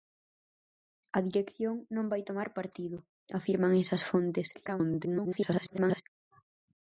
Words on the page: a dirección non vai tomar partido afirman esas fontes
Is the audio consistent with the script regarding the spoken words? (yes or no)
no